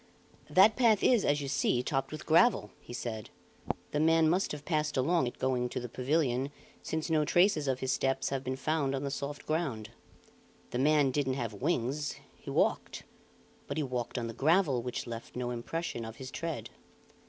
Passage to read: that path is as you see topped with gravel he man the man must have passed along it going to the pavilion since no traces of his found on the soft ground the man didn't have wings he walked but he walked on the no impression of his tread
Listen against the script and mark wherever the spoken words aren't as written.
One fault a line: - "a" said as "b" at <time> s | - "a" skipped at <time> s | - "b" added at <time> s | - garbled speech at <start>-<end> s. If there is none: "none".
- "man" said as "said" at 2.9 s
- "steps have been" added at 7.9 s
- "gravel which left" added at 14.3 s